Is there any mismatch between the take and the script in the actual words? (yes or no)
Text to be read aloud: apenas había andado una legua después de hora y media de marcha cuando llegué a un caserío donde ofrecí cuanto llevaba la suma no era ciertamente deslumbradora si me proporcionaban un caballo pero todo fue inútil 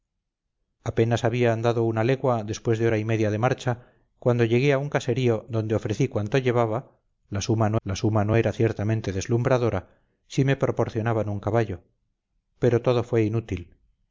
yes